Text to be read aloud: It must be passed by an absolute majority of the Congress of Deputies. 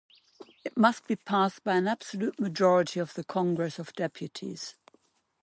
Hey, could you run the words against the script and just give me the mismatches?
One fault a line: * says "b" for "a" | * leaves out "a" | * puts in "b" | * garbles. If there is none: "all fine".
all fine